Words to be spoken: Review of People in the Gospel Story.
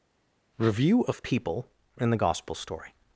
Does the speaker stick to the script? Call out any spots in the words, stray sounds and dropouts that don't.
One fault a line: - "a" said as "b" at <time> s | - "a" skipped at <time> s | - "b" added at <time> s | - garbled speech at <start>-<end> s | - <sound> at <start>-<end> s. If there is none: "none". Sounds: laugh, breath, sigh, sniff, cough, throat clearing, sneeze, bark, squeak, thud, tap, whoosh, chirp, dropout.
none